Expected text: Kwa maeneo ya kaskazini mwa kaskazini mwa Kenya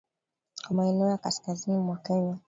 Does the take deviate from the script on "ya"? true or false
false